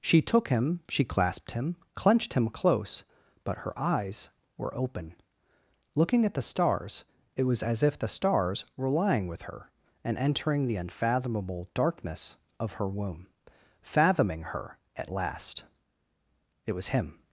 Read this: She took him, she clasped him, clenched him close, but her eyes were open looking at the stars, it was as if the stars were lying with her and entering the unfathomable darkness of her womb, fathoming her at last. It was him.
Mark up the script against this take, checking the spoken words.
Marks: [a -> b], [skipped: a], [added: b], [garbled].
She took him, she clasped him, clenched him close, but her eyes were open looking at the stars, it was as if the stars were lying with her and entering the unfathomable darkness of her womb, fathoming her at last. It was him.